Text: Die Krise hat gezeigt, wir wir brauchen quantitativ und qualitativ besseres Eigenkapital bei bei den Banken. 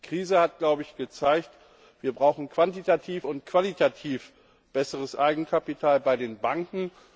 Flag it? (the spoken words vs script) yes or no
yes